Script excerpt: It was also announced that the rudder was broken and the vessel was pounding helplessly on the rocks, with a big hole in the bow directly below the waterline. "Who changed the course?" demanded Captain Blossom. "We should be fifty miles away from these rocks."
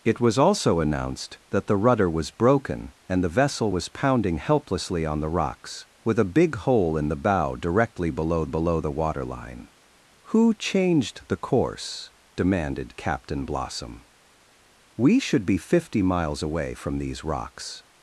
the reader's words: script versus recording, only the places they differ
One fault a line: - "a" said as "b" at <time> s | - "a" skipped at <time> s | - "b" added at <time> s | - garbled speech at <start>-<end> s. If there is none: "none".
- "below" added at 8.4 s